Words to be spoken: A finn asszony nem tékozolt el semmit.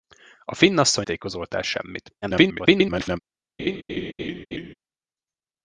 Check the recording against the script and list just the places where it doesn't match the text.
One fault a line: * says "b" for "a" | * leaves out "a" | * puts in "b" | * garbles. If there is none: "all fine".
* leaves out "nem"
* garbles